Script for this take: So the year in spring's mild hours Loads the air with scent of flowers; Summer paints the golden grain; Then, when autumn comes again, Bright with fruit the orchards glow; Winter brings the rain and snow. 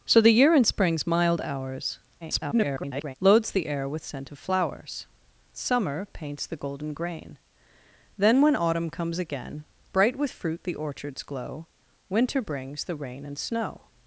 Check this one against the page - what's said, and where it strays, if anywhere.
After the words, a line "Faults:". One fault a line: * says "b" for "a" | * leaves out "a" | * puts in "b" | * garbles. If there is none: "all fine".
So the year in spring's mild hours [garbled] Loads the air with scent of flowers; Summer paints the golden grain; Then, when autumn comes again, Bright with fruit the orchards glow; Winter brings the rain and snow.
Faults:
* garbles